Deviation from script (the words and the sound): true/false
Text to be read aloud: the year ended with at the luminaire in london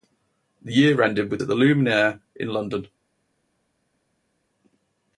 false